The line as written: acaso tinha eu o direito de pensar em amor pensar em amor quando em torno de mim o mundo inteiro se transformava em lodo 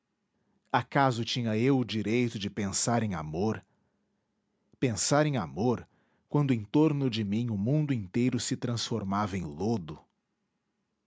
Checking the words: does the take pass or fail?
pass